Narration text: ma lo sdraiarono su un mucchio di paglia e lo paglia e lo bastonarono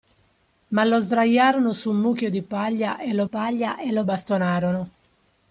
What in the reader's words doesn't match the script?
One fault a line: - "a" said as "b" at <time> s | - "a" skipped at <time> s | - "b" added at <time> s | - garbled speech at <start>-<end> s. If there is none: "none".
none